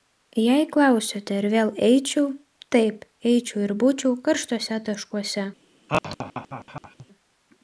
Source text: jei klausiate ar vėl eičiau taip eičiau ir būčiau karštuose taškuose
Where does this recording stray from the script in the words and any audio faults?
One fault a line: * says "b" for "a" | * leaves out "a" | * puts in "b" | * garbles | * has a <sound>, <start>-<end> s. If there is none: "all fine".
* has a laugh, 5.9-7.1 s